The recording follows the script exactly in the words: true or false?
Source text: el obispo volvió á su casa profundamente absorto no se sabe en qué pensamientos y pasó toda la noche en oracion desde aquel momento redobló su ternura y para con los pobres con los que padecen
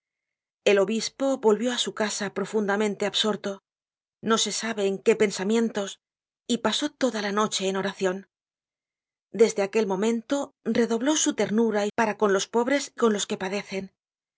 true